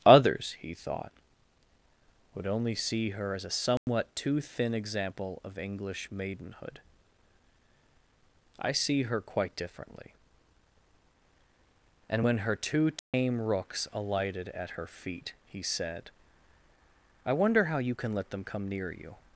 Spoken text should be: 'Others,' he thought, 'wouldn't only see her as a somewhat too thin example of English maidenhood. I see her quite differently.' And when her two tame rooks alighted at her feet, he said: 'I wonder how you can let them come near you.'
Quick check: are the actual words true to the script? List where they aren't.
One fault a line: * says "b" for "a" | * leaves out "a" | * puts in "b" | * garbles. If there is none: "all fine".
* says "would" for "wouldn't"